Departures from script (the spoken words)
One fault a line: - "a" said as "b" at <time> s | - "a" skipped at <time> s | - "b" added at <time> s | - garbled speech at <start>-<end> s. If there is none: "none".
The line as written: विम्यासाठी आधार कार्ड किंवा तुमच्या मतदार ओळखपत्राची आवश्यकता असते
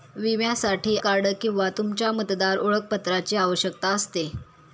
- "आधार" skipped at 0.9 s